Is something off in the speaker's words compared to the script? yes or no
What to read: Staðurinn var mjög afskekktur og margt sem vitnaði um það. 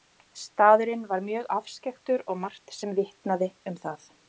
no